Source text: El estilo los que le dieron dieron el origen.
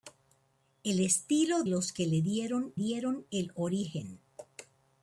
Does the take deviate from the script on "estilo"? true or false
false